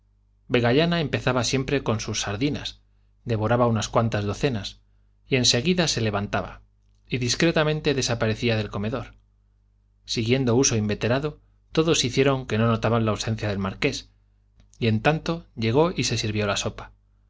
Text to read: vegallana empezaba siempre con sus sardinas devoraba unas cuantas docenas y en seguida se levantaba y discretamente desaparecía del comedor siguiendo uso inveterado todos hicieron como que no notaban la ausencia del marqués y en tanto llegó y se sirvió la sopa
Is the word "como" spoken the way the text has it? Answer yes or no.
no